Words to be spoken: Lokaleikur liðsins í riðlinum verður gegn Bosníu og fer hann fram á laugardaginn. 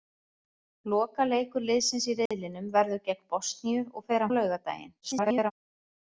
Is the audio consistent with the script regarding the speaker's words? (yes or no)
no